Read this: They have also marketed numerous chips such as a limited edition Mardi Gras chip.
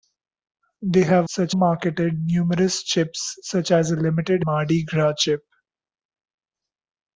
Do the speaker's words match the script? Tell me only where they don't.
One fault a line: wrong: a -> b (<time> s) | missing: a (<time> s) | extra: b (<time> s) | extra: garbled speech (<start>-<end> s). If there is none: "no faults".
wrong: also -> such (1.3 s)
missing: edition (4.5 s)